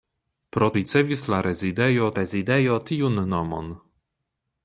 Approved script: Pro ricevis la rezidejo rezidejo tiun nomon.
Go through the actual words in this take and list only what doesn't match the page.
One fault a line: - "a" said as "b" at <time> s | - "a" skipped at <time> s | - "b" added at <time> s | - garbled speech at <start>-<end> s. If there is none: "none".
none